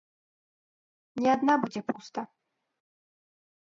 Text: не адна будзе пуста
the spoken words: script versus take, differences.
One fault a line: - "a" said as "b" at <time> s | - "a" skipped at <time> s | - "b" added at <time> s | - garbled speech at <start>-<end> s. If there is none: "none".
none